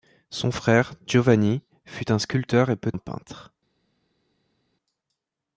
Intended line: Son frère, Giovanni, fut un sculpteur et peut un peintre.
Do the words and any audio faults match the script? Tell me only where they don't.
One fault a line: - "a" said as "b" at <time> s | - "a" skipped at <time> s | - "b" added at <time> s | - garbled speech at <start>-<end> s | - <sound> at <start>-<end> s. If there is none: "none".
none